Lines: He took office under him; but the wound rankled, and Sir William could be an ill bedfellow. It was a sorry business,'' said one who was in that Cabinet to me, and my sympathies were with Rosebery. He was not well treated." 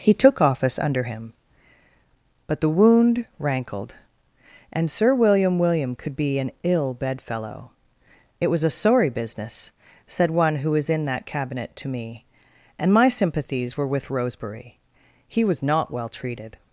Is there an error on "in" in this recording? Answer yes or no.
no